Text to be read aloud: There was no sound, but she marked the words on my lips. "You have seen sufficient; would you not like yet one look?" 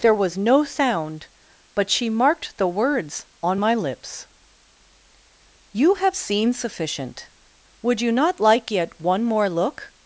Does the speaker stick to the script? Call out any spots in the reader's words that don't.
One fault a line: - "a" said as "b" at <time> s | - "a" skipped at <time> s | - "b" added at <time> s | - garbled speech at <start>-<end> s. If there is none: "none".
- "more" added at 9.2 s